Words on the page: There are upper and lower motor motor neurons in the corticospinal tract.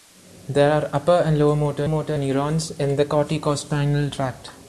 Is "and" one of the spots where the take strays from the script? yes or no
no